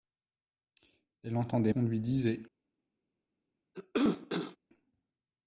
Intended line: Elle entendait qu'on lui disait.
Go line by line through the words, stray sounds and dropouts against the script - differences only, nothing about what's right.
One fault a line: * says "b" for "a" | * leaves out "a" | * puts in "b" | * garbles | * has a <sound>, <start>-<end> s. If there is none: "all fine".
* has a cough, 3.7-4.6 s